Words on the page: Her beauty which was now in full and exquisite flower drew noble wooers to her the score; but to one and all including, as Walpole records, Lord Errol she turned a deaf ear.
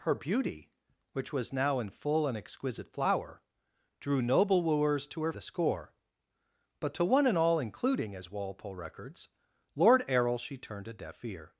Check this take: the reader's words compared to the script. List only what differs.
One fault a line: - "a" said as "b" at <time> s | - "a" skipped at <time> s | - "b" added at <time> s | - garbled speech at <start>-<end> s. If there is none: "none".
none